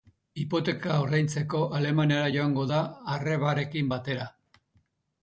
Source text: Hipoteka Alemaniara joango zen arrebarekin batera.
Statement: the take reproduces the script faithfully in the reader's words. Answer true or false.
false